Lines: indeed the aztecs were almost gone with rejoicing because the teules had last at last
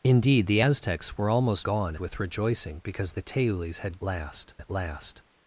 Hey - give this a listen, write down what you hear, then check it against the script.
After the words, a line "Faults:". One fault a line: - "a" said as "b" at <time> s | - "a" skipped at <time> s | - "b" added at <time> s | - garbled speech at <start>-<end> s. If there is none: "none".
indeed the aztecs were almost gone with rejoicing because the teules had last at last
Faults:
none